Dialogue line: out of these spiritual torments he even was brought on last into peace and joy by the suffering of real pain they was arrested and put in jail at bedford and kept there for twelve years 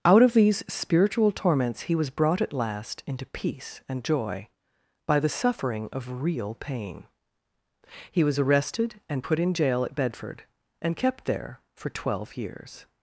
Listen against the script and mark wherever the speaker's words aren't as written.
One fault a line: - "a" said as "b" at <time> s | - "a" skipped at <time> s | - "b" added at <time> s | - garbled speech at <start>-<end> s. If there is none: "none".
- "even" skipped at 1.9 s
- "on" said as "at" at 2.4 s
- "they" said as "he" at 8.1 s